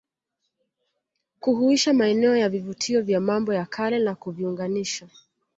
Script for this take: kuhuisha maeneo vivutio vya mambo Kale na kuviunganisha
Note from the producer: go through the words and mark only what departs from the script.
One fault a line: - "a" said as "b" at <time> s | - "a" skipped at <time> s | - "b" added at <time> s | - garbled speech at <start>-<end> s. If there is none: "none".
- "ya" added at 2.4 s
- "ya" added at 3.5 s